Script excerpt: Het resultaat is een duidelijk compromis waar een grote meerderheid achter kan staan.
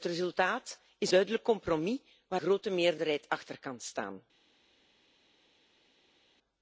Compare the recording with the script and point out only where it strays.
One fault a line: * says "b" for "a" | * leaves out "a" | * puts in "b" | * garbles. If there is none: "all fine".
* leaves out "een"
* leaves out "een"